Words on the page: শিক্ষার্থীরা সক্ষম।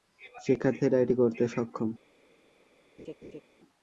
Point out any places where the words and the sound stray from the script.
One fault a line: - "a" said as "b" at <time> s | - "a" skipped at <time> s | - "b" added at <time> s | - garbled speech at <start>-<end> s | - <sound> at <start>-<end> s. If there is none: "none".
- "এটি করতে" added at 1.0 s
- laugh at 3.0-3.4 s